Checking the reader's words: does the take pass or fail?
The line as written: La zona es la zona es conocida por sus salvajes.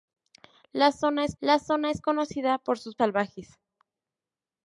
pass